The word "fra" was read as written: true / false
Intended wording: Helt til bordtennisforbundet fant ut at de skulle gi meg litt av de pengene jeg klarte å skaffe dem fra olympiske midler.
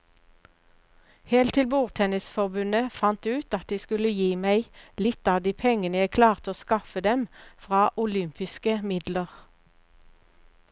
true